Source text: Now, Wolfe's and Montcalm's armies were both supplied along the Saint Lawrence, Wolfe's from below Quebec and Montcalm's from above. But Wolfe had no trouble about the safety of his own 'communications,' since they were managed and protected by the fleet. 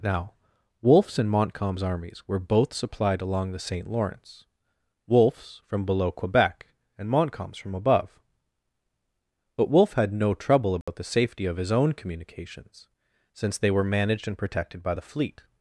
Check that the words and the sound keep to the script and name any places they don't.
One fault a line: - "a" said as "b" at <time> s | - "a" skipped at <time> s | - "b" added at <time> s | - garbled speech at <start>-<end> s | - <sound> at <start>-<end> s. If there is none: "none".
- dropout at 10.8-10.9 s